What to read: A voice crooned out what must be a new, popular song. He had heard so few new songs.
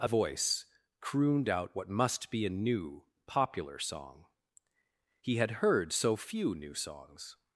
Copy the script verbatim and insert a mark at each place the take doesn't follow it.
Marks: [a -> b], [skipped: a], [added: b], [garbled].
A voice crooned out what must be a new, popular song. He had heard so few new songs.